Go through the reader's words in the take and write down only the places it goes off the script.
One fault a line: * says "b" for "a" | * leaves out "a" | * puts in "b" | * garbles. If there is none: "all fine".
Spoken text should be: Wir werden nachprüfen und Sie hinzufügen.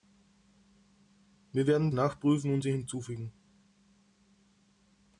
all fine